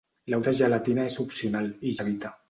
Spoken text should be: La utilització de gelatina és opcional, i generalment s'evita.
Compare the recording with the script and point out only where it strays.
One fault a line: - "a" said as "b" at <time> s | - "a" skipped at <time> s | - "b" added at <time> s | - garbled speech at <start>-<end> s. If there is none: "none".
- "utilització" skipped at 0.4 s
- "generalment" skipped at 1.9 s